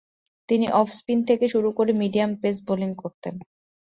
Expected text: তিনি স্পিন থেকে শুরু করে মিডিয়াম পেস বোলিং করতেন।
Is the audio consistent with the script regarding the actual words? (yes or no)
no